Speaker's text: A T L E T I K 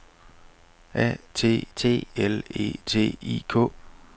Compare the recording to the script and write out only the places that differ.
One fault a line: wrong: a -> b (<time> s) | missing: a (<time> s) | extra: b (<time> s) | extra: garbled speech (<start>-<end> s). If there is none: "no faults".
extra: T (1.8 s)